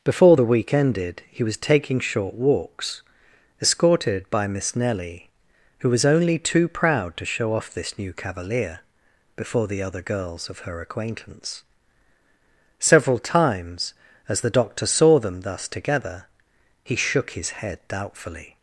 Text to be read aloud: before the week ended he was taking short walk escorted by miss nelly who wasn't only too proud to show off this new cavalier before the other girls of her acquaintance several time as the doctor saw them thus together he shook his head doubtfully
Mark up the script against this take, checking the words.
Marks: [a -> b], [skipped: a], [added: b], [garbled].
before the week ended he was taking short [walk -> walks] escorted by miss nelly who [wasn't -> was] only too proud to show off this new cavalier before the other girls of her acquaintance several [time -> times] as the doctor saw them thus together he shook his head doubtfully